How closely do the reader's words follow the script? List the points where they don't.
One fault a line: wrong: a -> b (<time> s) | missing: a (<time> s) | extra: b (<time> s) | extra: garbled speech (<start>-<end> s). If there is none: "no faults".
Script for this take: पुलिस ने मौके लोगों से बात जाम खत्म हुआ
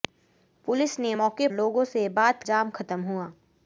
no faults